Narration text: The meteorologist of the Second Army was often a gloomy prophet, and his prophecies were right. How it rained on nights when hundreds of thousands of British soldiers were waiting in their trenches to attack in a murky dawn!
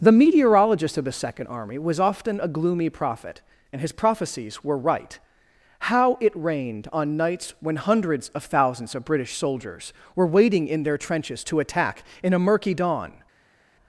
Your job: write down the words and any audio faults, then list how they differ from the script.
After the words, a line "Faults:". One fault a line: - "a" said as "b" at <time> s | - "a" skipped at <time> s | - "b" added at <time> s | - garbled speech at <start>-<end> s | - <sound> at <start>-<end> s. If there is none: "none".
The meteorologist of the Second Army was often a gloomy prophet, and his prophecies were right. How it rained on nights when hundreds of thousands of British soldiers were waiting in their trenches to attack in a murky dawn!
Faults:
none